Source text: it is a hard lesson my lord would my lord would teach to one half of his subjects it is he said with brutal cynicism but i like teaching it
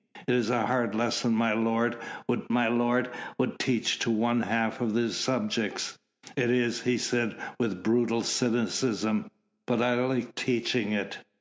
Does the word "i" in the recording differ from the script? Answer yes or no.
no